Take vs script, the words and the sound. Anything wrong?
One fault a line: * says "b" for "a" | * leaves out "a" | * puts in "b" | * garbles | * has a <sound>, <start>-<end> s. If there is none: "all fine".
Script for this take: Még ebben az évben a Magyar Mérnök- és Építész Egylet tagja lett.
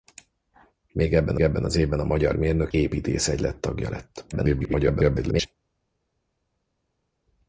* puts in "ebben"
* leaves out "és"
* garbles